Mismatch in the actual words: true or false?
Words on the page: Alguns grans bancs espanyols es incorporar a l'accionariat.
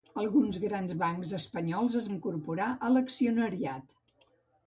false